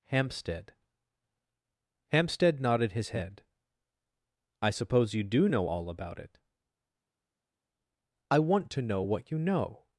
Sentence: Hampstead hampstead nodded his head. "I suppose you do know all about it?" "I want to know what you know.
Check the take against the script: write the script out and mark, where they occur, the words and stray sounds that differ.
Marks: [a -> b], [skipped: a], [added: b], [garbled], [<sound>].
Hampstead hampstead nodded his head. "I suppose you do know all about it?" "I want to know what you know.